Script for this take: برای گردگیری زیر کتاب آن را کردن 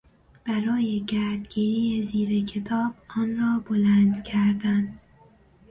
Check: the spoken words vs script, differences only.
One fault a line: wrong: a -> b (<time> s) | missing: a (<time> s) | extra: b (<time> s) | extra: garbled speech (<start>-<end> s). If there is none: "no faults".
extra: بلند (3.7 s)